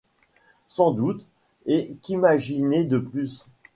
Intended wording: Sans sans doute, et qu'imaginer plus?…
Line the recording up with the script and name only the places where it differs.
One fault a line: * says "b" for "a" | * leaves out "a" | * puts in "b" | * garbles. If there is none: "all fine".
* leaves out "sans"
* puts in "de"